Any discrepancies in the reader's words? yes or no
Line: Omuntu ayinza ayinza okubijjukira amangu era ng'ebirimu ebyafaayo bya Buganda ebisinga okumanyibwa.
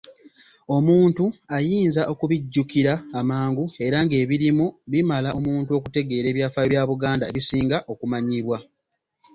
yes